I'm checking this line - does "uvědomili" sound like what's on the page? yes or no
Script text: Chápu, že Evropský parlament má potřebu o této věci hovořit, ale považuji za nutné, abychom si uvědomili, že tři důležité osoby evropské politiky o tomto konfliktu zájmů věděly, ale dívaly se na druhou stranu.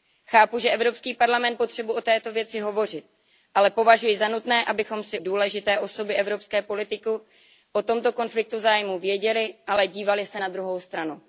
no